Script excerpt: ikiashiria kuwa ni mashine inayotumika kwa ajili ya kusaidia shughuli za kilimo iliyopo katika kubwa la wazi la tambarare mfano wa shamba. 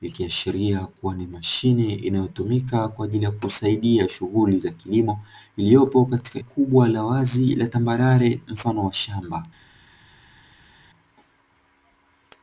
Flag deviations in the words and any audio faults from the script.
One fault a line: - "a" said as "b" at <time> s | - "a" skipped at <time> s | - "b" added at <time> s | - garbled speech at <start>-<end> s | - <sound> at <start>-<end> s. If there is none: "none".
none